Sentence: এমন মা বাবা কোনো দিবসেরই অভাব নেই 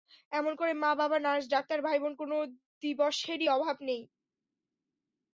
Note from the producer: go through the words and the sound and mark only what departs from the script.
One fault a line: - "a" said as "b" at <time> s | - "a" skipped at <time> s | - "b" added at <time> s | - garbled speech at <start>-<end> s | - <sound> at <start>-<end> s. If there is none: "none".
- "করে" added at 0.6 s
- "নার্স ডাক্তার ভাইবোন" added at 1.2 s